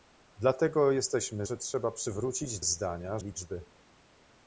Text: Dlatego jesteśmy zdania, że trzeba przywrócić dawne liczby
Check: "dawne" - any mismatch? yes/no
yes